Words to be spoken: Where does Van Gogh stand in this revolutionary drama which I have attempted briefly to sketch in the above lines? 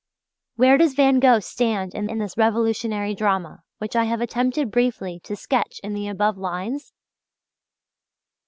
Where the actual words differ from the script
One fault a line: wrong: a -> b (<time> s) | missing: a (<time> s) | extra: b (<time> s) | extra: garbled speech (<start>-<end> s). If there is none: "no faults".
extra: in (2.1 s)